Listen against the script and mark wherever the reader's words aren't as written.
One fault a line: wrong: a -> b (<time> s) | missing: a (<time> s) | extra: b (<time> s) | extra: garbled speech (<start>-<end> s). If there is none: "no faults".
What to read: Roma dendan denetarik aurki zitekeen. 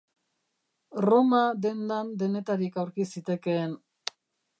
no faults